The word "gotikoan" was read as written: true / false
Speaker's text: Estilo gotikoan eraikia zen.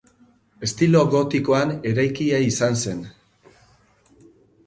true